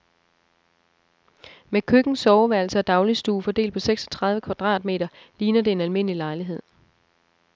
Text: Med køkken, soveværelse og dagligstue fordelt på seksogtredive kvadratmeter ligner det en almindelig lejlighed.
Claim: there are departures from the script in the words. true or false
false